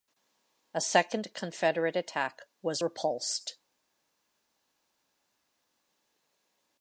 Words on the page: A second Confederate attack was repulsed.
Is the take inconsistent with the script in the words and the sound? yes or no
no